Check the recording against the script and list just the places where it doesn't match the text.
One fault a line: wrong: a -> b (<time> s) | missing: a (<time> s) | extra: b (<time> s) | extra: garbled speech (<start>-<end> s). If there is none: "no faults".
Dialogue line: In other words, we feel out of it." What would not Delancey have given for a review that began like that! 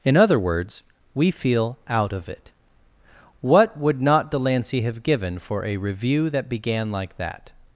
no faults